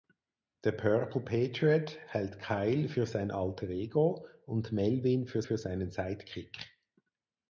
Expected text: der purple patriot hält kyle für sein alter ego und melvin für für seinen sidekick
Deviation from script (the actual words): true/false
false